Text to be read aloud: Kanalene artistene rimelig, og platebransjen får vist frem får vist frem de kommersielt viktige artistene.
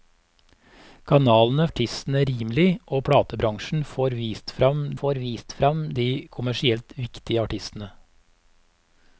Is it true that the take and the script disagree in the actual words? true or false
false